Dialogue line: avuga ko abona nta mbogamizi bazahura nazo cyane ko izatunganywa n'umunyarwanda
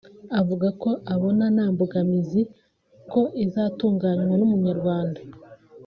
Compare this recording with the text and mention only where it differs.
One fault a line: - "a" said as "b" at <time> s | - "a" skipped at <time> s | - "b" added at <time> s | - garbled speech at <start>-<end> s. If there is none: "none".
- "bazahura nazo cyane" skipped at 2.4 s